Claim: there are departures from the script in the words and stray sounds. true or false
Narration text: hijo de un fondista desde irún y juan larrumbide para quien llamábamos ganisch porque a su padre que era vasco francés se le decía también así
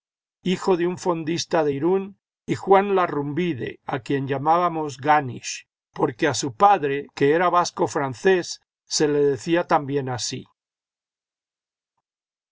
true